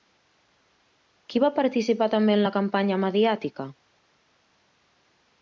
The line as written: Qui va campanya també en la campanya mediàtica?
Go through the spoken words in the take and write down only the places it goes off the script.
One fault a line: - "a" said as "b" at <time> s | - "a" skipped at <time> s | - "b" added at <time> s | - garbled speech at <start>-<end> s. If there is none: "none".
- "campanya" said as "participar" at 1.6 s